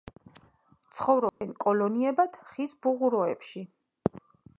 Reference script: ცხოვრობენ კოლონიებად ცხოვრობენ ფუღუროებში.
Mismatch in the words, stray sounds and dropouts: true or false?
true